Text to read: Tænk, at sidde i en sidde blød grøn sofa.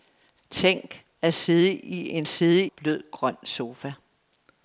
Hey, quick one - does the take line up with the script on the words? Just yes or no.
yes